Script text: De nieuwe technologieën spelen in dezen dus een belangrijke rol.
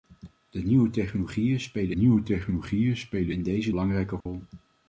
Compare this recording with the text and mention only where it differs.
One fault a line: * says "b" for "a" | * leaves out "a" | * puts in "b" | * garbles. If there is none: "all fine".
* puts in "nieuwe technologieën spelen"
* leaves out "dus een"